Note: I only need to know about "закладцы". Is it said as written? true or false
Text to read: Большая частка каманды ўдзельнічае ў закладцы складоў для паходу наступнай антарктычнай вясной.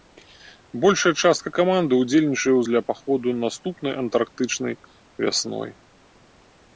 false